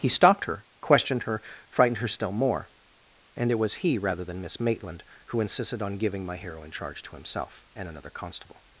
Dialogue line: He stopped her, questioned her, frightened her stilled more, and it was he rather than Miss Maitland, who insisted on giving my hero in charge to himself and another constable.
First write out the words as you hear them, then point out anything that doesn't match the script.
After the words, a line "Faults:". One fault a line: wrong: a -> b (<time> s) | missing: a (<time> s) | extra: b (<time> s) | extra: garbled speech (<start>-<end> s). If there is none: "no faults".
He stopped her, questioned her, frightened her still more, and it was he rather than Miss Maitland, who insisted on giving my hero in charge to himself and another constable.
Faults:
wrong: stilled -> still (2.1 s)